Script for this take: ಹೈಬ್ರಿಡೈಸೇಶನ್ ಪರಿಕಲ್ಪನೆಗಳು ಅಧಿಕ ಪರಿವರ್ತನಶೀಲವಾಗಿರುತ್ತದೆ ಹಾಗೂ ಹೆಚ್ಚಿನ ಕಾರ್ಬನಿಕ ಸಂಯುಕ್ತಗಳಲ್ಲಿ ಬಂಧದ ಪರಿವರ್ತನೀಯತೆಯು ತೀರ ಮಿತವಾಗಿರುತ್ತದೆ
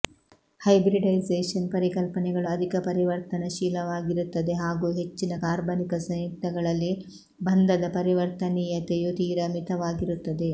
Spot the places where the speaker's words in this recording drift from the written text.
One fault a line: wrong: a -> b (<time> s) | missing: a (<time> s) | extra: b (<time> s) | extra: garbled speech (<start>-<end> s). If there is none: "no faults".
no faults